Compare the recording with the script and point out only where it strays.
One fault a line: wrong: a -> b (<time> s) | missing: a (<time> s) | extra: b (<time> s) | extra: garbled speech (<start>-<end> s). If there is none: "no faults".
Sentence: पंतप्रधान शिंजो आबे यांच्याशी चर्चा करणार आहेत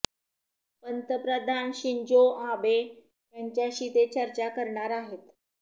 extra: ते (3.9 s)